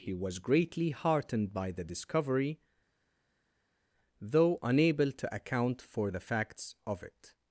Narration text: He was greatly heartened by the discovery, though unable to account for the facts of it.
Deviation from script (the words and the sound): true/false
false